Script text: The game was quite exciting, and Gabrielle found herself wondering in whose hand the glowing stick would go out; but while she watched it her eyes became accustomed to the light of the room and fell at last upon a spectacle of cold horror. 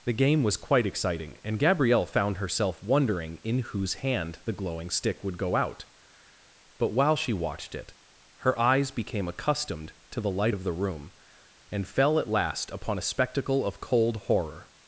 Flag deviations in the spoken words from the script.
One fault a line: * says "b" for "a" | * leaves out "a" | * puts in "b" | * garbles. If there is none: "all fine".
all fine